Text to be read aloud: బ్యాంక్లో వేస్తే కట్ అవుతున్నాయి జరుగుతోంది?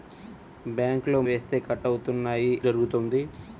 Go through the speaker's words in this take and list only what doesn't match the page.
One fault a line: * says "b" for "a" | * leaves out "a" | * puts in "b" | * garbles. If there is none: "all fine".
all fine